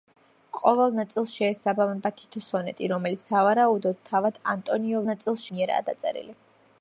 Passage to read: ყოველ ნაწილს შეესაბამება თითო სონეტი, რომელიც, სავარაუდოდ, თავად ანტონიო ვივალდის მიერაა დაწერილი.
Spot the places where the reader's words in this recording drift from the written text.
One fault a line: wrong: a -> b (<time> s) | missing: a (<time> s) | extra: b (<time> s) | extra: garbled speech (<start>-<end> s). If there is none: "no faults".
wrong: ვივალდის -> ნაწილს (5.1 s)